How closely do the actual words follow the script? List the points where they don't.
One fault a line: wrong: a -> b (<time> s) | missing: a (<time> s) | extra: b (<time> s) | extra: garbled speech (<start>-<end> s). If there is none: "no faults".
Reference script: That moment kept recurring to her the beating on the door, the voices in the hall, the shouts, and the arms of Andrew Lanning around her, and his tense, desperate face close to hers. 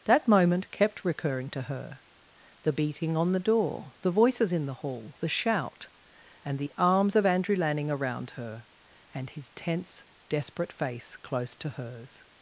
wrong: shouts -> shout (5.3 s)